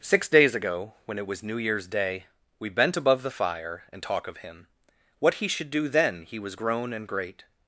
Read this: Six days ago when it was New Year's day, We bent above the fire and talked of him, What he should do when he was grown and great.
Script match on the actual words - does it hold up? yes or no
no